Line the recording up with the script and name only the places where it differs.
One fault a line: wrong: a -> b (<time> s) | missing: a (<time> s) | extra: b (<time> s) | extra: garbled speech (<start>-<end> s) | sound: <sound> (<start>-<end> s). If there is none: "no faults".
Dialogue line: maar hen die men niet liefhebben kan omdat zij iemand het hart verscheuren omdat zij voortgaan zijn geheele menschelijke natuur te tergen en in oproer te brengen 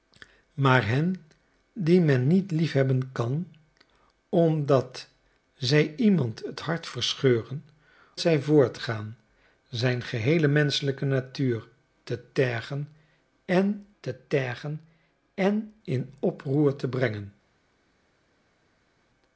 missing: omdat (7.7 s)
extra: te tergen en (14.0 s)